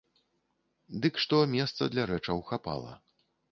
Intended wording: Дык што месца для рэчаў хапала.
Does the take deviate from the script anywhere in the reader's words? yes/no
no